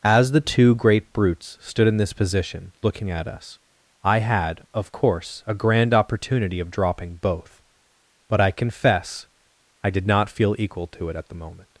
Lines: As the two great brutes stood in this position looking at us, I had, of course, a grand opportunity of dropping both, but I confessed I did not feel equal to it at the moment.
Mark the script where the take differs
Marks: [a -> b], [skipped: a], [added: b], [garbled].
As the two great brutes stood in this position looking at us, I had, of course, a grand opportunity of dropping both, but I [confessed -> confess] I did not feel equal to it at the moment.